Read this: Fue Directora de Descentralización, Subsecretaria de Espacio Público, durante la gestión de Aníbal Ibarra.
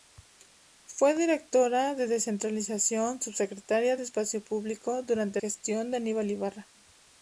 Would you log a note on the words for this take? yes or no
yes